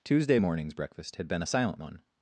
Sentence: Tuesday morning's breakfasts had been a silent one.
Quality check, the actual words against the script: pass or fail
fail